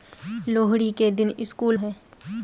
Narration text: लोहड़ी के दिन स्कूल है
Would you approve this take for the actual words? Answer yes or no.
yes